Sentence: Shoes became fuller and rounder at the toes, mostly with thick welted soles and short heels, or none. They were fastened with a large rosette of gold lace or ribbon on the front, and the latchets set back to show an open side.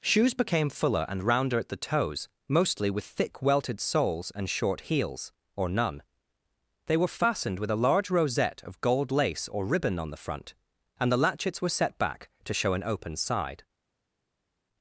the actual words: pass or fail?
fail